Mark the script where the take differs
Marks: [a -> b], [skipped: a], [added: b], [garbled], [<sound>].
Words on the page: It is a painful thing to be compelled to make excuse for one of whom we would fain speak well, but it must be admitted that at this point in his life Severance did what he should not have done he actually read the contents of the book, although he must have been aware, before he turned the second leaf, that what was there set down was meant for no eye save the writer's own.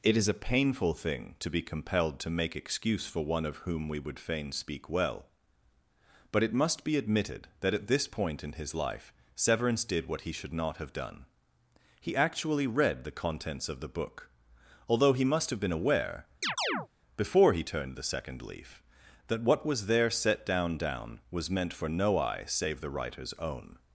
It is a painful thing to be compelled to make excuse for one of whom we would fain speak well, but it must be admitted that at this point in his life Severance did what he should not have done he actually read the contents of the book, although he must have been aware, [chirp] before he turned the second leaf, that what was there set down [added: down] was meant for no eye save the writer's own.